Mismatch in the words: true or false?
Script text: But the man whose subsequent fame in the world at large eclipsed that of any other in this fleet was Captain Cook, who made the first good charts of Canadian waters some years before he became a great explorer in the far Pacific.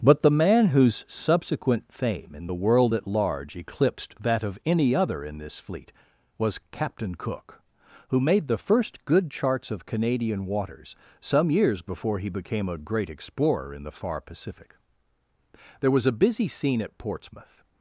true